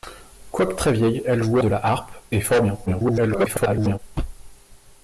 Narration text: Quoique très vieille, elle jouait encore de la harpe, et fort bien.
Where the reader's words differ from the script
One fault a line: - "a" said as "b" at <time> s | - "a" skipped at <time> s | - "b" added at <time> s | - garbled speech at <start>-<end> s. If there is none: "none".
- "encore" skipped at 1.6 s
- garbled speech at 2.9-4.0 s